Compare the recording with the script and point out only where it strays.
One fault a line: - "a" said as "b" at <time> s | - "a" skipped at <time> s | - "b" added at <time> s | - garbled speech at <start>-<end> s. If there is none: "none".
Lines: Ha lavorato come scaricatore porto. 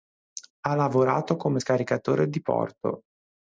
- "di" added at 2.3 s